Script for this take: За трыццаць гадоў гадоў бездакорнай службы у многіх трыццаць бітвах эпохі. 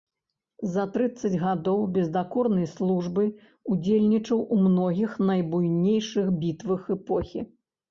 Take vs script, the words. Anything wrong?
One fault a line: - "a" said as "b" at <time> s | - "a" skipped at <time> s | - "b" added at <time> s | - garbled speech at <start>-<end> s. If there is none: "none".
- "гадоў" skipped at 1.8 s
- "ўдзельнічаў" added at 3.7 s
- "трыццаць" said as "найбуйнейшых" at 5.3 s